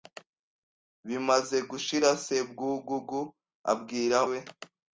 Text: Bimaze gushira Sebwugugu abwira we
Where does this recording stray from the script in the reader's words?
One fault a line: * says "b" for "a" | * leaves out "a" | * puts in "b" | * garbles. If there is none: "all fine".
all fine